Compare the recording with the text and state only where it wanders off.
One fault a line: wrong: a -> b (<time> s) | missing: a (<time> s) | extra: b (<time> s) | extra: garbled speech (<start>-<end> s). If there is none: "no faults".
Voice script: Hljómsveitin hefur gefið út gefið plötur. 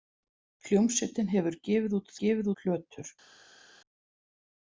no faults